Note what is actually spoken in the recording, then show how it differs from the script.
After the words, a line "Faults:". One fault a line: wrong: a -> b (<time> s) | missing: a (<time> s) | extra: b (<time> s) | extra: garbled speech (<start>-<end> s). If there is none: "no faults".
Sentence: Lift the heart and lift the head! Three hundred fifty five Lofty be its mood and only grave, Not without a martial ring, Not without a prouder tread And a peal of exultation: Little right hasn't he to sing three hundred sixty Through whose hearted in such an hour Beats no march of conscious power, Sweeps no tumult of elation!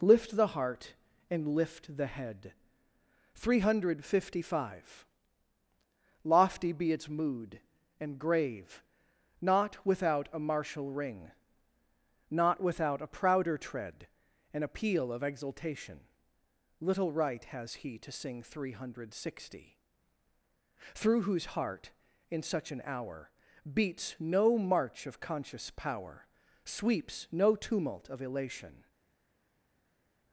Lift the heart and lift the head! Three hundred fifty five Lofty be its mood and grave, Not without a martial ring, Not without a prouder tread And a peal of exultation: Little right has he to sing three hundred sixty Through whose heart in such an hour Beats no march of conscious power, Sweeps no tumult of elation!
Faults:
missing: only (8.2 s)
wrong: hasn't -> has (17.4 s)
wrong: hearted -> heart (21.5 s)